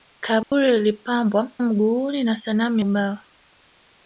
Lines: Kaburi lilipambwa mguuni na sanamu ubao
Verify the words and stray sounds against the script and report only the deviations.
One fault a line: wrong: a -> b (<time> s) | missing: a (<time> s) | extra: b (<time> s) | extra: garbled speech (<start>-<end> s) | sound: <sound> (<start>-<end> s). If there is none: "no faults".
sound: dropout (0.4-0.5 s)